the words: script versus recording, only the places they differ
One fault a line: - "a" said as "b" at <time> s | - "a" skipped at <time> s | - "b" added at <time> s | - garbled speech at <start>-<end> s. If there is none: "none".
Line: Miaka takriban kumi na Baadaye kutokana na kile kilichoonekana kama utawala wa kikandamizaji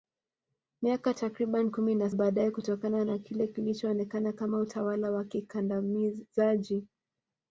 none